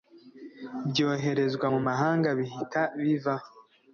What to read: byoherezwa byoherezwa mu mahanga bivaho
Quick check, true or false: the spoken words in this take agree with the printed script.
false